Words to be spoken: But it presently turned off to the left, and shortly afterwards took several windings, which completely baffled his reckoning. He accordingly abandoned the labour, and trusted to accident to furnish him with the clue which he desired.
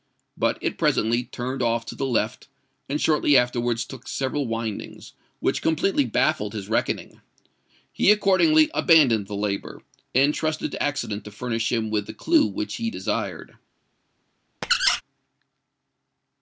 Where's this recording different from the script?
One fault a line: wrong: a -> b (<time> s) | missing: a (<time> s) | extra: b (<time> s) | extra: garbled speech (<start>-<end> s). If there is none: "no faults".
no faults